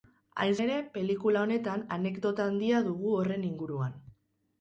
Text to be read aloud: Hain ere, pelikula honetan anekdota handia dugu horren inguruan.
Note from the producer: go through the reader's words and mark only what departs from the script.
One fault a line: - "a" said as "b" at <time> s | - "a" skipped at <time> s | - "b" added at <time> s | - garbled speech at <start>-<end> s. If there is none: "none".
none